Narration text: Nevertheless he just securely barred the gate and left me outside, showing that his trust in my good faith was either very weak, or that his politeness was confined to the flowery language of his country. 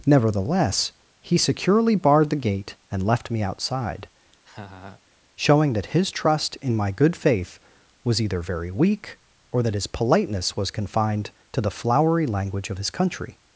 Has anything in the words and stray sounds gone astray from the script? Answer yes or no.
yes